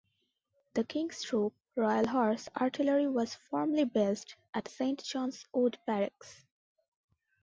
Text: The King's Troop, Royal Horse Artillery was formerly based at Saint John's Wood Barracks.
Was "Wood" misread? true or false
false